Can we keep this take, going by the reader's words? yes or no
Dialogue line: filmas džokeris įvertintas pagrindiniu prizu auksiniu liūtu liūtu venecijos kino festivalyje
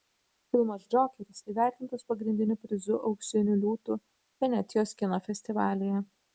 no